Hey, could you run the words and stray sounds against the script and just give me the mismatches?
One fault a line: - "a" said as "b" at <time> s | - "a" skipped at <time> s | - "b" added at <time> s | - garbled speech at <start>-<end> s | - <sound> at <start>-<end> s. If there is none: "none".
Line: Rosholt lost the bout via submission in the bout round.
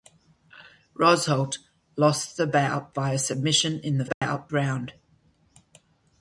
- dropout at 4.1-4.2 s